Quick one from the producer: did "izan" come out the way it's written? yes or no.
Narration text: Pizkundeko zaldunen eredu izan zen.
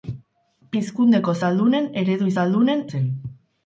no